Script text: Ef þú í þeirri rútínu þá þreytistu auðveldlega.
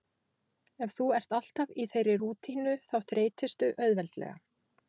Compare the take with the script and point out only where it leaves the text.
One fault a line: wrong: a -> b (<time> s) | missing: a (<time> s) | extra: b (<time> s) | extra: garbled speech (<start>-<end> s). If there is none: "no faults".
extra: ert alltaf (1.2 s)